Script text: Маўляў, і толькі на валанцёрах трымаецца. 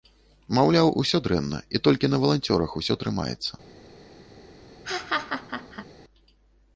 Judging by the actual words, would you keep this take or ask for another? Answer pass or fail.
fail